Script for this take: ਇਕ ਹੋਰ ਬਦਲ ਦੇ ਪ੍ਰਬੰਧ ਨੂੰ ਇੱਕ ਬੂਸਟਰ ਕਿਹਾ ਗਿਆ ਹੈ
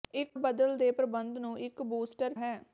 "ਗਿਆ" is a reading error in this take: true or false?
true